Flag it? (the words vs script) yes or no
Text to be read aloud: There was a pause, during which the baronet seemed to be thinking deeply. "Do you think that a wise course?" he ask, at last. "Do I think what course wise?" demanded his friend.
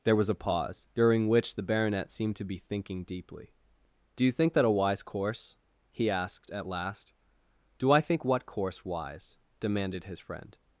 yes